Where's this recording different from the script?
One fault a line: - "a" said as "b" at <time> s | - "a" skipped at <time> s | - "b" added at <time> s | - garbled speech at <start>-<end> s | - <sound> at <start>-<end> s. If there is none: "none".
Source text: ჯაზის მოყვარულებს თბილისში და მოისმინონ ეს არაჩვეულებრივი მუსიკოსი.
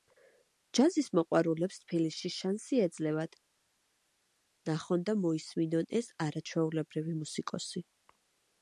- "შანსი ეძლევათ ნახონ" added at 2.4 s